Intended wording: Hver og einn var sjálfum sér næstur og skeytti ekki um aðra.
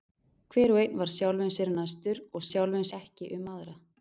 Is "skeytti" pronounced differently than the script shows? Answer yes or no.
yes